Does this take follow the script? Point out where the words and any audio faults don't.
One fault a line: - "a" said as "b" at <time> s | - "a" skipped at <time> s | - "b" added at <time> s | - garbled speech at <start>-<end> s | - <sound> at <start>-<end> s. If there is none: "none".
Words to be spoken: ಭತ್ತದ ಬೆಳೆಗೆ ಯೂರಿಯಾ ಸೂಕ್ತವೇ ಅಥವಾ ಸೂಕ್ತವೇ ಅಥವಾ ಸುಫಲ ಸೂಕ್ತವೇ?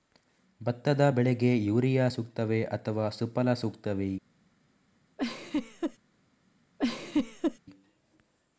- "ಸೂಕ್ತವೇ ಅಥವಾ" skipped at 3.1 s
- laugh at 5.2-6.0 s
- laugh at 6.8-7.6 s